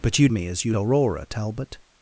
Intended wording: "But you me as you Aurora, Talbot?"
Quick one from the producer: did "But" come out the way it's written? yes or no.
yes